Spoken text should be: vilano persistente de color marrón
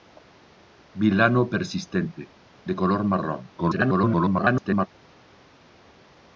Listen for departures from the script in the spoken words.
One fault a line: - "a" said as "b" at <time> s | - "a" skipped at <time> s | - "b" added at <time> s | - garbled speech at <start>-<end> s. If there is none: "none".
- garbled speech at 3.6-4.9 s